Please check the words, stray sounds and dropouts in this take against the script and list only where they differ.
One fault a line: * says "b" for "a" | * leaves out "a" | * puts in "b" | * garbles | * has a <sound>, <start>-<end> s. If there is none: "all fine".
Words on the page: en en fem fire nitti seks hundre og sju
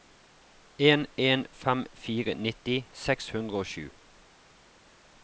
all fine